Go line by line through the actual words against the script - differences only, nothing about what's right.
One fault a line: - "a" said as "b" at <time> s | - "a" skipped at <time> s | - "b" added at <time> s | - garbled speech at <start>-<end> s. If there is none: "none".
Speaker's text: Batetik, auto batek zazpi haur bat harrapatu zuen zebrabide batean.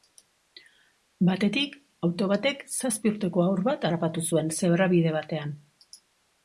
- "urteko" added at 3.1 s